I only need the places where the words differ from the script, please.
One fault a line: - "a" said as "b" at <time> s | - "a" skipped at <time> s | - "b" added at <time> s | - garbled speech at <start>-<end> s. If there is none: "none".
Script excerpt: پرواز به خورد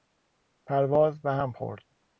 - "هم" added at 1.3 s